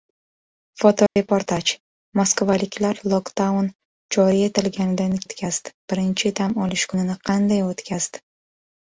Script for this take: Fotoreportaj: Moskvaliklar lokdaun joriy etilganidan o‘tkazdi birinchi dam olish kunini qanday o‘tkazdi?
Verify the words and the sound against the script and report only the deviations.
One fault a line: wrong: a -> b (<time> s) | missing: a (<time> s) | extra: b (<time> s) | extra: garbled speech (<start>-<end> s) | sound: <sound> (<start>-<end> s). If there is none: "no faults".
sound: dropout (1.1-1.2 s)